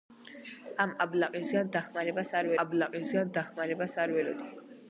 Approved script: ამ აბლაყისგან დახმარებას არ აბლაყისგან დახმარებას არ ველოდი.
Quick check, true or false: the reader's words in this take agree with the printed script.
true